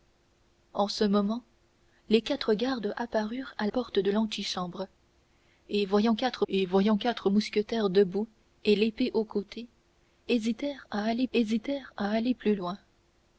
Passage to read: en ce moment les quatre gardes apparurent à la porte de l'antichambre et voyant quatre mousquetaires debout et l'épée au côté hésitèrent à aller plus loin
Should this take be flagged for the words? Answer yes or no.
yes